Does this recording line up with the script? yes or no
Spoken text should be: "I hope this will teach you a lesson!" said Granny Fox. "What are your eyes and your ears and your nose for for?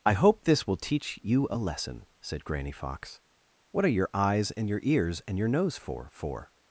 yes